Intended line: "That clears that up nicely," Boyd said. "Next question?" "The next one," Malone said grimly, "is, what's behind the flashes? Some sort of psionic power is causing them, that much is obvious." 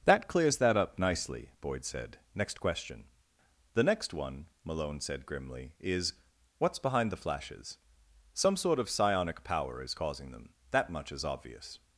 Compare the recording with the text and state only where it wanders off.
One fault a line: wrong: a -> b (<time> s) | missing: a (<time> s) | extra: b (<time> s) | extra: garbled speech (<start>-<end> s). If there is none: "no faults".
no faults